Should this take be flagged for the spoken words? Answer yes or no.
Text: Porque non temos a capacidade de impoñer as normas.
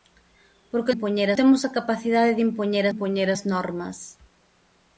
yes